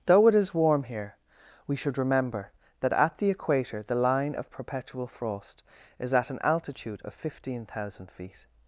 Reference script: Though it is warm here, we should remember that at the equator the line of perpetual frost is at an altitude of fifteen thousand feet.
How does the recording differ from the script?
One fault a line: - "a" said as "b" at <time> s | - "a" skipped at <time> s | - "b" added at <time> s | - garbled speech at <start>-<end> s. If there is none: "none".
none